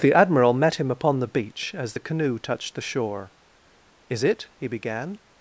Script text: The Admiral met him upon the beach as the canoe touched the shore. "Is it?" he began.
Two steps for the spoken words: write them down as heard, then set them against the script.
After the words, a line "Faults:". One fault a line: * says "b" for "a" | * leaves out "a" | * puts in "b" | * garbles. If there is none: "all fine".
The Admiral met him upon the beach as the canoe touched the shore. "Is it?" he began.
Faults:
all fine